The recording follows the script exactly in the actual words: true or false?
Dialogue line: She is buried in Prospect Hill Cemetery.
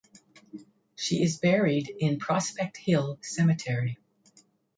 true